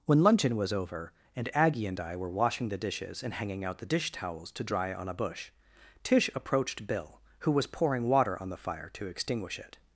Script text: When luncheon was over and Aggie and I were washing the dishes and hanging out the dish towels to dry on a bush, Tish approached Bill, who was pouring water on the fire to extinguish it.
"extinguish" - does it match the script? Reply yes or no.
yes